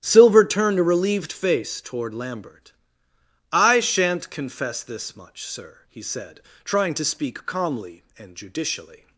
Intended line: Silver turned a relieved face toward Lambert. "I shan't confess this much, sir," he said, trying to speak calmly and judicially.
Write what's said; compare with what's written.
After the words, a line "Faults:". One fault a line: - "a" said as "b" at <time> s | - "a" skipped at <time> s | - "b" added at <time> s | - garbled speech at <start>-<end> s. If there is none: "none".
Silver turned a relieved face toward Lambert. "I shan't confess this much, sir," he said, trying to speak calmly and judicially.
Faults:
none